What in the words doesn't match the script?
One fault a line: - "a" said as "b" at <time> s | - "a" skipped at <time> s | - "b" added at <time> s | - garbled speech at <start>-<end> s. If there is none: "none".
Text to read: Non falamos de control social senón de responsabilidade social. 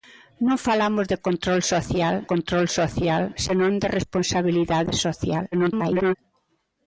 - "control social" added at 2.3 s
- garbled speech at 5.5-6.1 s